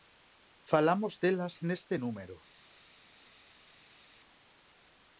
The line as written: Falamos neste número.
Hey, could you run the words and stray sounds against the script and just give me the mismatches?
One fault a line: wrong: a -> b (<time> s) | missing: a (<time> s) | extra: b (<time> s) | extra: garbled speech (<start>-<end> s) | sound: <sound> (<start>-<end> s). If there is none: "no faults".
extra: delas (1.2 s)